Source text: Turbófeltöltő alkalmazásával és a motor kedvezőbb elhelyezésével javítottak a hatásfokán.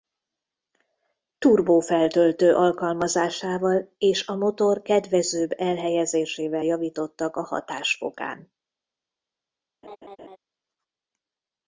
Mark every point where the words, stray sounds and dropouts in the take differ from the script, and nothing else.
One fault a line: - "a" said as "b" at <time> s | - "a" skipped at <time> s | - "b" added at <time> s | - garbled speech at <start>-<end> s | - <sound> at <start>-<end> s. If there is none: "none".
- laugh at 9.8-10.4 s